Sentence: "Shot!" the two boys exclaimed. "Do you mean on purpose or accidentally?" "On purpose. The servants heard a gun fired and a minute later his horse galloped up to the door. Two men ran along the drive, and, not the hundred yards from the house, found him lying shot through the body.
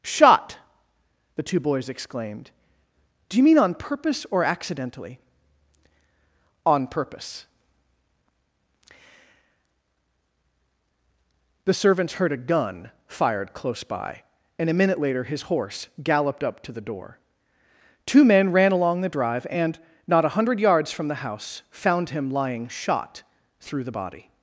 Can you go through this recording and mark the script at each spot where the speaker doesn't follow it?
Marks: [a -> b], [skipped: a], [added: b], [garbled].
"Shot!" the two boys exclaimed. "Do you mean on purpose or accidentally?" "On purpose. The servants heard a gun fired [added: close by] and a minute later his horse galloped up to the door. Two men ran along the drive, and, not [the -> a] hundred yards from the house, found him lying shot through the body.